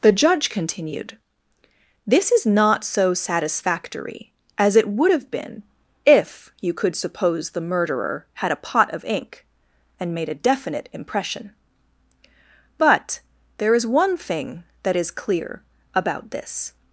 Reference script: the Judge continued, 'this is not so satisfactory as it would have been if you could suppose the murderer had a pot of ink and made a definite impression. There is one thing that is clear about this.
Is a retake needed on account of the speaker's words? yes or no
yes